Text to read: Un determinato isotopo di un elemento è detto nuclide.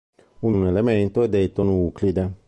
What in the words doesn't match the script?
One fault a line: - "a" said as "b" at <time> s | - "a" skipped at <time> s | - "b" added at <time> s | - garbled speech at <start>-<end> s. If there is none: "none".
- "determinato isotopo di" skipped at 0.5 s